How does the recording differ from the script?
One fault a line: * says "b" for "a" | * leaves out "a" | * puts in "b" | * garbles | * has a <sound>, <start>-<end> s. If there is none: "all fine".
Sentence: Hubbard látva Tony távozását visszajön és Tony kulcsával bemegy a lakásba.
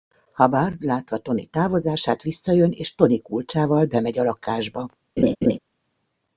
* has a laugh, 5.2-5.6 s